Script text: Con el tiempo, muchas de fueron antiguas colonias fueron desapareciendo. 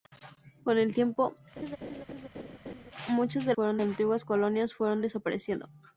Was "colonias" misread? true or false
false